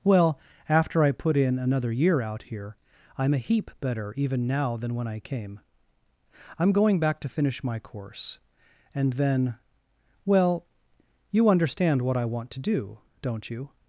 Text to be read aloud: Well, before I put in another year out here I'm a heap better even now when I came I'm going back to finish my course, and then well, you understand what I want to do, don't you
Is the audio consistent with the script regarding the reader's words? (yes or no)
no